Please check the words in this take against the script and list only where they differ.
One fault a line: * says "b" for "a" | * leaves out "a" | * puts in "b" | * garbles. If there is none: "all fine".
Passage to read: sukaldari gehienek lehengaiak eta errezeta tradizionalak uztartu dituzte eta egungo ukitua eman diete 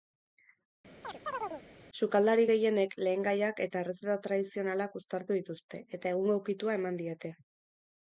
all fine